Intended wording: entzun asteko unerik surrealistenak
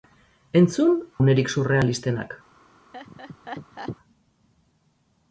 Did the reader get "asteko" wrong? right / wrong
wrong